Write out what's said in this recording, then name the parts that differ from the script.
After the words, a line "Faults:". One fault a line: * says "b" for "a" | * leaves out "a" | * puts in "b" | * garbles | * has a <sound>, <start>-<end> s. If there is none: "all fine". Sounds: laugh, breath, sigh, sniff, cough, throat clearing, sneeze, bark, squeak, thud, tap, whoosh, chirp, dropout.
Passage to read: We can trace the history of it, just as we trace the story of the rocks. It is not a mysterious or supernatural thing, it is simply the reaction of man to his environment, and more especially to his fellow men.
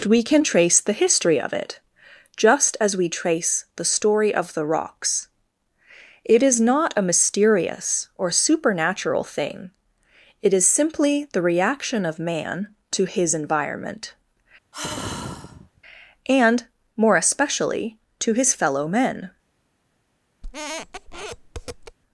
We can trace the history of it, just as we trace the story of the rocks. It is not a mysterious or supernatural thing, it is simply the reaction of man to his environment, and more especially to his fellow men.
Faults:
* has a sigh, 14.7-15.8 s
* has a squeak, 20.4-22.0 s